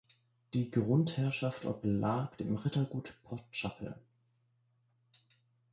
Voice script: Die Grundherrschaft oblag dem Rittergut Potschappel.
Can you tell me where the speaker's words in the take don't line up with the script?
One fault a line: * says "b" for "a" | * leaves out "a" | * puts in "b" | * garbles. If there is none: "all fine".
all fine